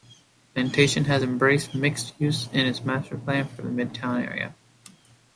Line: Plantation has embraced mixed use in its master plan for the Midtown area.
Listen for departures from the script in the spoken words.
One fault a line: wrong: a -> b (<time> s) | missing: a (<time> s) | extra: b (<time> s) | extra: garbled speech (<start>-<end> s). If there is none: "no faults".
no faults